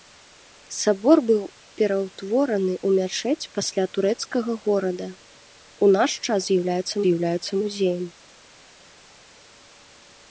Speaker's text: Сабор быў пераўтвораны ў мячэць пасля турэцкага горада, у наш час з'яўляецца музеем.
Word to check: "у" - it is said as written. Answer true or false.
true